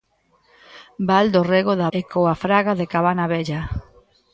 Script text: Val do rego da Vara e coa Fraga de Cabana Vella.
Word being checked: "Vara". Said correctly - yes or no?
no